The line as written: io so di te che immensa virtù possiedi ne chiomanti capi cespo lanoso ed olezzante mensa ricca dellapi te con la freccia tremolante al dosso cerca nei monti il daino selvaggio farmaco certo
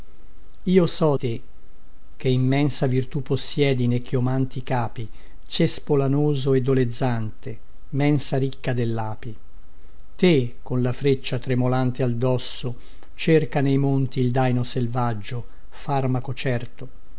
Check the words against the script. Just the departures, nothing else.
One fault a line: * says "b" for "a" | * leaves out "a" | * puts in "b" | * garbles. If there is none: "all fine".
* leaves out "di"